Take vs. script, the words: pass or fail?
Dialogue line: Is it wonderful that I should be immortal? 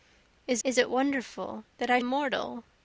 fail